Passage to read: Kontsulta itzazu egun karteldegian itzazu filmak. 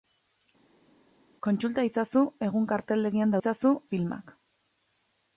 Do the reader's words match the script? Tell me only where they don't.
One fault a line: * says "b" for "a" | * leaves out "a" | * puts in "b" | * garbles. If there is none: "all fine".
all fine